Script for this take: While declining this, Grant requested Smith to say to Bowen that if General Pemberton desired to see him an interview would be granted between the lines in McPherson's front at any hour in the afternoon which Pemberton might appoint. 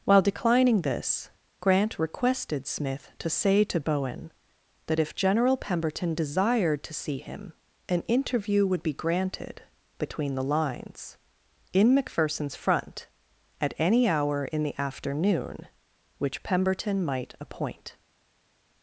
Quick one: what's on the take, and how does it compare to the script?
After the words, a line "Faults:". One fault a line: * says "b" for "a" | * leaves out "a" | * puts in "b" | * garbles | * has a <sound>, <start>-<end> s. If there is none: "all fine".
While declining this, Grant requested Smith to say to Bowen that if General Pemberton desired to see him an interview would be granted between the lines in McPherson's front at any hour in the afternoon which Pemberton might appoint.
Faults:
all fine